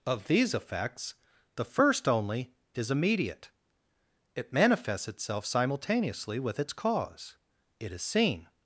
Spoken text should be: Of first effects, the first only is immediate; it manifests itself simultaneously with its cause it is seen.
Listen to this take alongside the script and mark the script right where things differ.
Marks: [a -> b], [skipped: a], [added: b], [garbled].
Of [first -> these] effects, the first only is immediate; it manifests itself simultaneously with its cause it is seen.